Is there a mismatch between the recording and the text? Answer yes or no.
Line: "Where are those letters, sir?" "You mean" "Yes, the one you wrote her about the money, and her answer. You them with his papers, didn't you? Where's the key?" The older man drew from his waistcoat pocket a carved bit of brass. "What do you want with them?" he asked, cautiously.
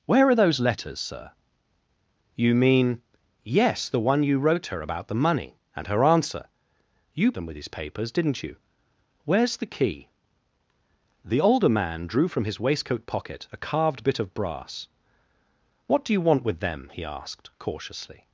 no